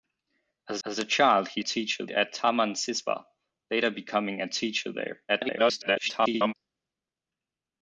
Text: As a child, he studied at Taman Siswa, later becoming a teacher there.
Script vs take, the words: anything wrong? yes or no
yes